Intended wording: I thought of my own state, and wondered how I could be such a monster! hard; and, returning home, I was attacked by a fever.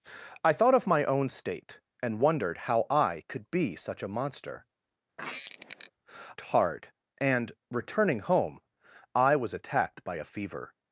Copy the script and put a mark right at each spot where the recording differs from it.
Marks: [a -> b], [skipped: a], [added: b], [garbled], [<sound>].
I thought of my own state, and wondered how I could be such a monster! [squeak] hard; and, returning home, I was attacked by a fever.